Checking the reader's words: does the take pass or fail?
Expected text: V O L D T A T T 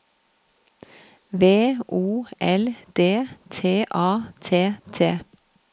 pass